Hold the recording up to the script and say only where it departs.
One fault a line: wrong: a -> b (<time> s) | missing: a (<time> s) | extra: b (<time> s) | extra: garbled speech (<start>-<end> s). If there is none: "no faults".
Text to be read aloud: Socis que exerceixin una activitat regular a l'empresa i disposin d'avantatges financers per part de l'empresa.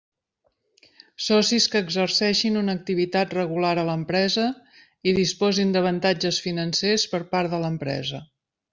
no faults